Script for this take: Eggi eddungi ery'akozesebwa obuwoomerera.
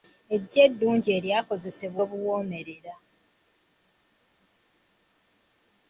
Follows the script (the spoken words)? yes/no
yes